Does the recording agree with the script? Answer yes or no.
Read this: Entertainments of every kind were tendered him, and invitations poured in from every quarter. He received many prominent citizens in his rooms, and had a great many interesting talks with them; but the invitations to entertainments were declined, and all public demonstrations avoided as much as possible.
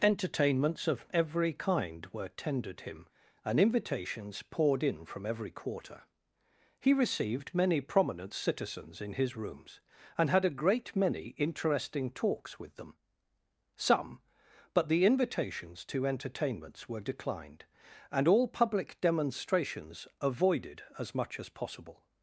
no